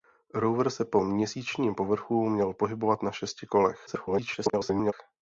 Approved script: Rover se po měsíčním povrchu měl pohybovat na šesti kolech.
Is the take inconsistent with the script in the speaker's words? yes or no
yes